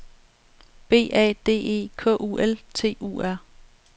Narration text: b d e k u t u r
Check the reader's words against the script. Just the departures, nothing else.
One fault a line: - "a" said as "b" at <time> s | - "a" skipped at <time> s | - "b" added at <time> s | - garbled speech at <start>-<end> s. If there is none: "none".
- "a" added at 1.1 s
- "l" added at 2.4 s